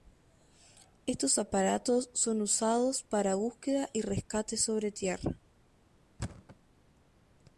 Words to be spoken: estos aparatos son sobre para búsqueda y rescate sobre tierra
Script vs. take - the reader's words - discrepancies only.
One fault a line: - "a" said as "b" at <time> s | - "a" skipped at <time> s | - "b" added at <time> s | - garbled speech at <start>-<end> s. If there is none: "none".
- "sobre" said as "usados" at 2.4 s